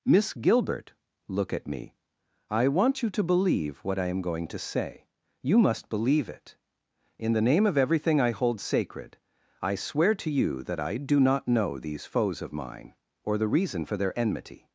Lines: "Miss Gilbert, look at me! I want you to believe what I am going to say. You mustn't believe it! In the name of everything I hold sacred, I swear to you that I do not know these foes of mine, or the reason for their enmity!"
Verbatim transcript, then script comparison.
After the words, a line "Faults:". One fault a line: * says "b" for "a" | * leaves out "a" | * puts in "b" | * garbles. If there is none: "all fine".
"Miss Gilbert, look at me! I want you to believe what I am going to say. You must believe it! In the name of everything I hold sacred, I swear to you that I do not know these foes of mine, or the reason for their enmity!"
Faults:
* says "must" for "mustn't"